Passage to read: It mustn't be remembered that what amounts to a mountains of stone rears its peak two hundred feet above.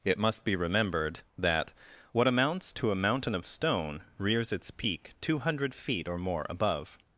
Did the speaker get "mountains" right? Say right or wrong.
wrong